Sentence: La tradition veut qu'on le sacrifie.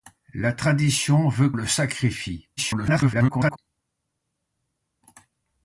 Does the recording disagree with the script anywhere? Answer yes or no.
yes